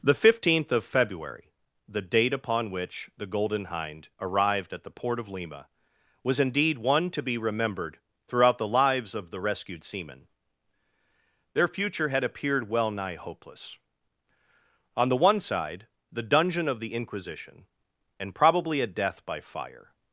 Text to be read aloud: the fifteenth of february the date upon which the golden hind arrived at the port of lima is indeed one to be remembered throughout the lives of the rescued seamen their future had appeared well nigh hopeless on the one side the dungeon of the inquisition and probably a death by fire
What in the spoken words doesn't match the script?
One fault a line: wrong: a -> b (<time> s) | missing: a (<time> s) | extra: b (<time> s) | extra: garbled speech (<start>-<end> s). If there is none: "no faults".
wrong: is -> was (6.2 s)